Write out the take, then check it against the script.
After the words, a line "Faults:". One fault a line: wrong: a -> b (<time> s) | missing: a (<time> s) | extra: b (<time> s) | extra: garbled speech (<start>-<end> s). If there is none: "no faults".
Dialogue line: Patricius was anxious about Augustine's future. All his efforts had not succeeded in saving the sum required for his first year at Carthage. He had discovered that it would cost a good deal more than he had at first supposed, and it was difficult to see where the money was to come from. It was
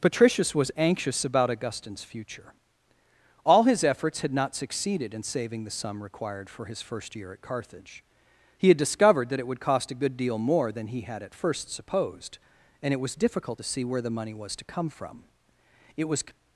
Patricius was anxious about Augustine's future. All his efforts had not succeeded in saving the sum required for his first year at Carthage. He had discovered that it would cost a good deal more than he had at first supposed, and it was difficult to see where the money was to come from. It was
Faults:
no faults